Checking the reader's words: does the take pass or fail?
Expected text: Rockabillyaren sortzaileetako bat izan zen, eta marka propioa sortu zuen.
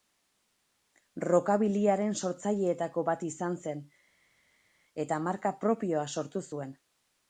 pass